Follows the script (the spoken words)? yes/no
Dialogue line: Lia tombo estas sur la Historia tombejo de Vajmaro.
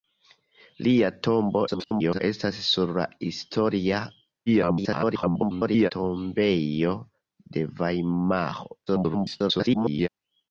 no